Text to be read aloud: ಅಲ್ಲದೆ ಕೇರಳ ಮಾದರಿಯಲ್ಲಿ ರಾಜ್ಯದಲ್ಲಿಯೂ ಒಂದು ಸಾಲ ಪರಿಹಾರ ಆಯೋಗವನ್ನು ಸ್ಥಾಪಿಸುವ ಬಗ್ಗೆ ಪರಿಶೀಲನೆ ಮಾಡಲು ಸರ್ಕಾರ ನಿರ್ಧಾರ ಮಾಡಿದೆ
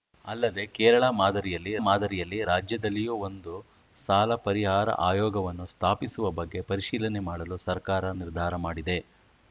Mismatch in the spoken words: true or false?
true